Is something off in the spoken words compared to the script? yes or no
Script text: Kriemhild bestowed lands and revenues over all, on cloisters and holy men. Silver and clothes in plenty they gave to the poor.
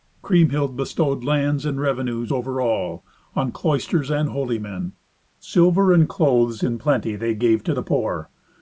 no